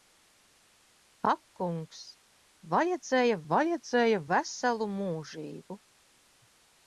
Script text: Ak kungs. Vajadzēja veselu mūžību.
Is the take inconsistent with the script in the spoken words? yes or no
yes